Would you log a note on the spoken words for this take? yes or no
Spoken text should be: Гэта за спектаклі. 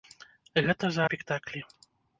no